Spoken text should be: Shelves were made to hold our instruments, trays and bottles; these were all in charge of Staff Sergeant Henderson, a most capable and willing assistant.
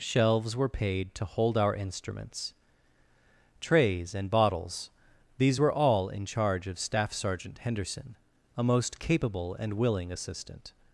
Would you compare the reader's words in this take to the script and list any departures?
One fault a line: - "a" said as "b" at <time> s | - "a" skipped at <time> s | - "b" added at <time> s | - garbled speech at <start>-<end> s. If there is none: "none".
- "made" said as "paid" at 0.7 s